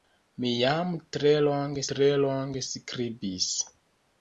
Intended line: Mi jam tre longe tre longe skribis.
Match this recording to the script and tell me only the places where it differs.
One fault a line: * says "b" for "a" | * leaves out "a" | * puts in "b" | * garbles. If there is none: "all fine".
all fine